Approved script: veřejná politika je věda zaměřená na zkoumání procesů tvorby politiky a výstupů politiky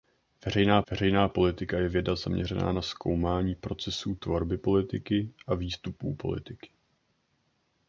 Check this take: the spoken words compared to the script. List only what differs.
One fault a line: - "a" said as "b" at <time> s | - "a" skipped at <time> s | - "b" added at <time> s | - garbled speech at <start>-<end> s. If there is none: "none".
- "veřejná" added at 0.9 s